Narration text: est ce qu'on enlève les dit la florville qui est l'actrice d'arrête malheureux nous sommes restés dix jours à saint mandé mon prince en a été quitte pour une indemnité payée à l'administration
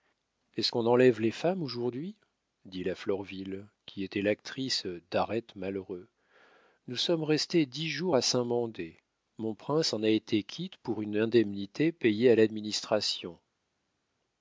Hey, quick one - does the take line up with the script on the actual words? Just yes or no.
no